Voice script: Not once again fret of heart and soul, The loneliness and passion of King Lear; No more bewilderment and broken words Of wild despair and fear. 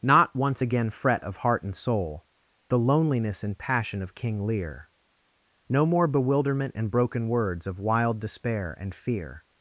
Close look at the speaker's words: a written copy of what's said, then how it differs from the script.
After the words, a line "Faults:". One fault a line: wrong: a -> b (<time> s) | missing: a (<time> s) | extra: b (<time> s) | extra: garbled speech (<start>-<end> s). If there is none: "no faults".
Not once again fret of heart and soul, The loneliness and passion of King Lear; No more bewilderment and broken words Of wild despair and fear.
Faults:
no faults